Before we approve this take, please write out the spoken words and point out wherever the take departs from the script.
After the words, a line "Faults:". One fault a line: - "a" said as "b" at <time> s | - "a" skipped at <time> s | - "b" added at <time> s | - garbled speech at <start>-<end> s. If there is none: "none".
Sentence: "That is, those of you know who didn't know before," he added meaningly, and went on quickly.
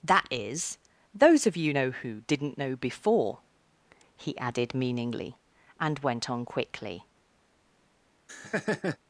"That is, those of you know who didn't know before," he added meaningly, and went on quickly.
Faults:
none